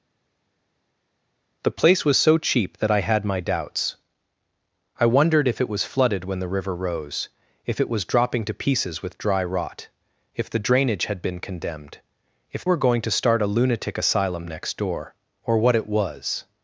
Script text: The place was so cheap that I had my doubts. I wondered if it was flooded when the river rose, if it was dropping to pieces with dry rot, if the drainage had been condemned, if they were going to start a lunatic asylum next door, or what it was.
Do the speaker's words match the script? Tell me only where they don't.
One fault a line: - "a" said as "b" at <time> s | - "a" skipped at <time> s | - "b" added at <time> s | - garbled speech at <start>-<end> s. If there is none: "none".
- "they" skipped at 12.6 s